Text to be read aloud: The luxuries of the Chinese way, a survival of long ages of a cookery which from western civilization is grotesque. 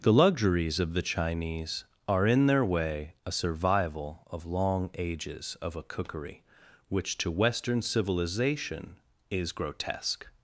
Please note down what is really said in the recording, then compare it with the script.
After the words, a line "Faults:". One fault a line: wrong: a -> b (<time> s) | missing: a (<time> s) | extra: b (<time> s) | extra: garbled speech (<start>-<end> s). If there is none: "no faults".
The luxuries of the Chinese are, in their way, a survival of long ages of a cookery which to western civilization is grotesque.
Faults:
extra: are in their (2.1 s)
wrong: from -> to (7.2 s)